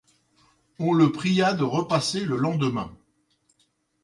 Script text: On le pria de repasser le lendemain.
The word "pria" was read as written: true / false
true